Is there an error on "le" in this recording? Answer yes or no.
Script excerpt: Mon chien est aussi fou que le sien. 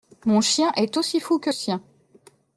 yes